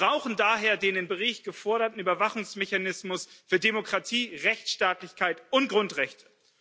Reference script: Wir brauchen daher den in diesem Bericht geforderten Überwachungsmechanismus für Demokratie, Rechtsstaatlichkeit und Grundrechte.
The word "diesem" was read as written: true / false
false